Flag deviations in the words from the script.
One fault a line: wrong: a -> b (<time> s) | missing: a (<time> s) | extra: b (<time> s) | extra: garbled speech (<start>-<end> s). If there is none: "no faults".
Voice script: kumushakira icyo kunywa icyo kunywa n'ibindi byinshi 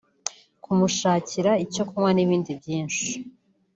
missing: icyo kunywa (2.1 s)